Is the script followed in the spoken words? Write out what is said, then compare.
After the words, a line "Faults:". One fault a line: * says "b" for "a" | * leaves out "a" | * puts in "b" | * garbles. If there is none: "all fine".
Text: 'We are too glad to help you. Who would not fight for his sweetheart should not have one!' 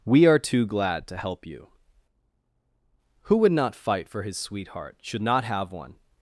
'We are too glad to help you. Who would not fight for his sweetheart should not have one!'
Faults:
all fine